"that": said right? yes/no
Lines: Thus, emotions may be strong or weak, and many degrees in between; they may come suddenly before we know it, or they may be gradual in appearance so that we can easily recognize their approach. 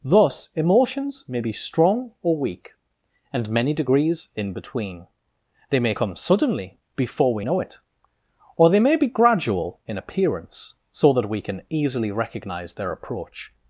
yes